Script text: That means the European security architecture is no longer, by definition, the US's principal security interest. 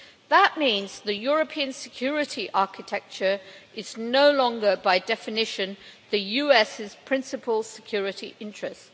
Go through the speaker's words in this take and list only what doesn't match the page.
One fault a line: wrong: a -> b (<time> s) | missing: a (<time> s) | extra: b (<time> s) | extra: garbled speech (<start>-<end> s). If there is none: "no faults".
no faults